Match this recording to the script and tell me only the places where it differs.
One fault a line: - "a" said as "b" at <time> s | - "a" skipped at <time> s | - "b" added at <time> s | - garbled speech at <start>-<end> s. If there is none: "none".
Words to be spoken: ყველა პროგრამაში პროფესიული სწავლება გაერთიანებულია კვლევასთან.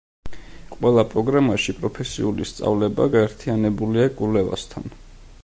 none